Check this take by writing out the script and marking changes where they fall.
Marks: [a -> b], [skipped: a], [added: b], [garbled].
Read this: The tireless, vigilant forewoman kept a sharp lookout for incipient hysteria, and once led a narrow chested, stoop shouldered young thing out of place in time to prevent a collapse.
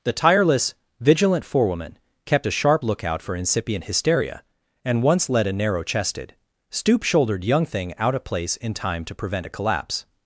The tireless, vigilant forewoman kept a sharp lookout for incipient hysteria, and once led a narrow chested, stoop shouldered young thing out of place in time to prevent a collapse.